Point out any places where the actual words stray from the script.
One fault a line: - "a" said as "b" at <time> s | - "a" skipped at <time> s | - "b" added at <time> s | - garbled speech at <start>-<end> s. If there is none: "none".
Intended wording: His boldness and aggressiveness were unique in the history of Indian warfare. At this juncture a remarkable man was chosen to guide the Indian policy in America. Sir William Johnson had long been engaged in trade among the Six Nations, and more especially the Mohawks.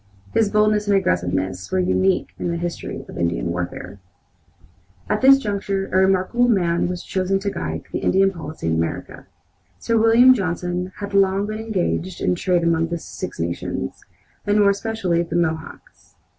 none